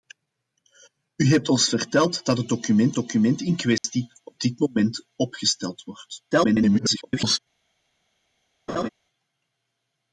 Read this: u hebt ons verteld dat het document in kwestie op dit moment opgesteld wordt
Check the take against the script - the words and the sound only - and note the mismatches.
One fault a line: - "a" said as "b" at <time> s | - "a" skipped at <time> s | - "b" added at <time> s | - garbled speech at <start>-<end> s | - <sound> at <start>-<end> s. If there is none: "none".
- "document" added at 3.0 s
- dropout at 3.8-3.8 s
- garbled speech at 6.3-7.4 s
- laugh at 8.7-8.9 s